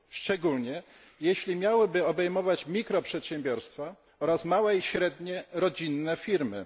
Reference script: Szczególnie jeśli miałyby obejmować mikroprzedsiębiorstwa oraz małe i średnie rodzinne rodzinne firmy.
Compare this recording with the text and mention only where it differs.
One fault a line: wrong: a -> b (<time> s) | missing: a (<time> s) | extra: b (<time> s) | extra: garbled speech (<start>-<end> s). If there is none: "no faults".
missing: rodzinne (6.2 s)